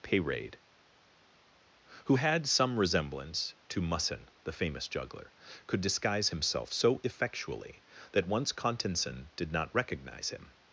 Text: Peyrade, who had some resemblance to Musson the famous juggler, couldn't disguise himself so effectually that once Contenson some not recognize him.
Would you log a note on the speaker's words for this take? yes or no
yes